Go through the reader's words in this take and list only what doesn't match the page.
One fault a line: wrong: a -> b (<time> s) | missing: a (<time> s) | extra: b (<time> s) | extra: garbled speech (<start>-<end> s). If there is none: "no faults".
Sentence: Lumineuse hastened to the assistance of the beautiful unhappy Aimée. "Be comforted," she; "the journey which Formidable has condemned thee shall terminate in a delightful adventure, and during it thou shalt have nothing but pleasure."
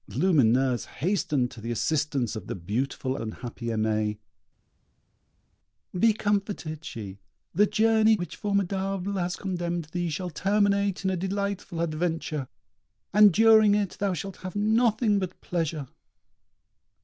no faults